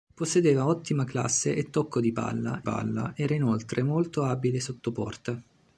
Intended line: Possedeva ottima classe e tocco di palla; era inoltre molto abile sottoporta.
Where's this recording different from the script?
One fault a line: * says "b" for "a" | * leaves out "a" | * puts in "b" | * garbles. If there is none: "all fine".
* puts in "palla"